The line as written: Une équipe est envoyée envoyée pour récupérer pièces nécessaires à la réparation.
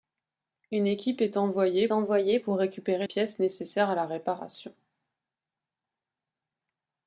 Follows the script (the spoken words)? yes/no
yes